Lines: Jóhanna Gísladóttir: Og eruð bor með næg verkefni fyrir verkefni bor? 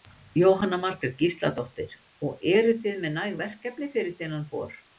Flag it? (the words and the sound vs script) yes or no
yes